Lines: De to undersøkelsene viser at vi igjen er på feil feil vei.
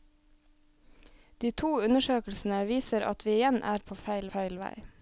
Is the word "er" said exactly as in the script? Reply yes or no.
yes